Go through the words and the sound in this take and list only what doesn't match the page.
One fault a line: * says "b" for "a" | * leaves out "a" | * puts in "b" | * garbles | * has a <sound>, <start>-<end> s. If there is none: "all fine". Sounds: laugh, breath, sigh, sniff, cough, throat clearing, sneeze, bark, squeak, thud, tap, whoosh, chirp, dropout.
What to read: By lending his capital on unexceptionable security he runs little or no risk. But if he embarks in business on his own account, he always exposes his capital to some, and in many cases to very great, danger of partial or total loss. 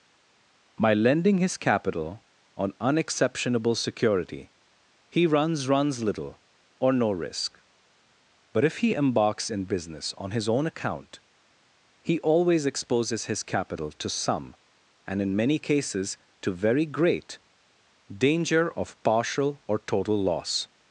* puts in "runs"